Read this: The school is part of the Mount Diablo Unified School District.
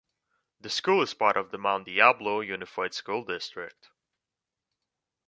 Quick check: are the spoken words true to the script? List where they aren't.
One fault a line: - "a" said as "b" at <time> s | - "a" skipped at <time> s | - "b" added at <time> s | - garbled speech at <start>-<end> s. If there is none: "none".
none